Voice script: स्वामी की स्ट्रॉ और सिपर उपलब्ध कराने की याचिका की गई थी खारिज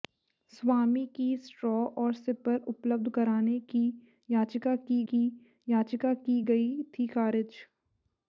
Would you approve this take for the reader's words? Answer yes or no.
no